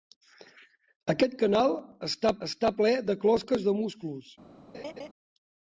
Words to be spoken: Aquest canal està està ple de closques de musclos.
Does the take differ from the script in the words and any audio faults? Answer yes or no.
yes